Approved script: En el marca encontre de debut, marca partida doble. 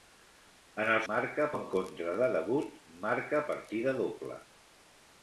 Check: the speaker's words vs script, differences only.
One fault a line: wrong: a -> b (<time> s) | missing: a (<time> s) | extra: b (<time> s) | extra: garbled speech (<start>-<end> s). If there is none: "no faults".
no faults